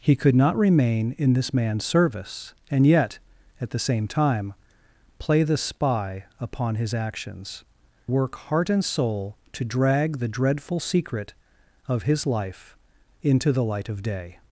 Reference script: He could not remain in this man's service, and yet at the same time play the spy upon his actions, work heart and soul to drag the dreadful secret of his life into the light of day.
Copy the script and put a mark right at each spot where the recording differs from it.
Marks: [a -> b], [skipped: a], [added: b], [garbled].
He could not remain in this man's service, and yet at the same time play the spy upon his actions, work heart and soul to drag the dreadful secret of his life into the light of day.